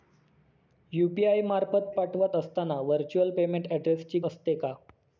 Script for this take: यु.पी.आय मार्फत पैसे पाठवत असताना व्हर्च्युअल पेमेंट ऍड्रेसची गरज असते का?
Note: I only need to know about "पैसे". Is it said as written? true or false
false